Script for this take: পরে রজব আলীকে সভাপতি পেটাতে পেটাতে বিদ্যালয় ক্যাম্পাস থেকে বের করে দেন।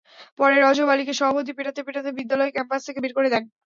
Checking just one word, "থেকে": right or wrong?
right